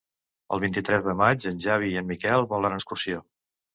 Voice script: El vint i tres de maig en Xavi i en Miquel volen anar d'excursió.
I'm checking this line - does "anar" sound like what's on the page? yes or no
no